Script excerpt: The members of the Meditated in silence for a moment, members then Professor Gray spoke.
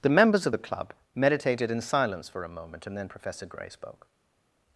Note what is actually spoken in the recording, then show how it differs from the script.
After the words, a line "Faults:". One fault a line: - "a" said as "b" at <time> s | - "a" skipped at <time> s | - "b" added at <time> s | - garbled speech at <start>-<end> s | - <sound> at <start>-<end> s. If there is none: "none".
The members of the Club meditated in silence for a moment, and then Professor Gray spoke.
Faults:
- "Club" added at 0.6 s
- "members" said as "and" at 2.8 s